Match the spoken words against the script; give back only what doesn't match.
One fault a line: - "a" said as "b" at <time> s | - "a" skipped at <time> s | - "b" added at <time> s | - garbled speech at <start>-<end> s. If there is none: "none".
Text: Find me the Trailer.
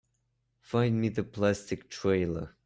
- "Plastic" added at 1.2 s